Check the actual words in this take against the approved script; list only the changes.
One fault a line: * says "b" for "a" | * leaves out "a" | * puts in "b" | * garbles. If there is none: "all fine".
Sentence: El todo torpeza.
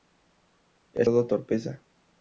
all fine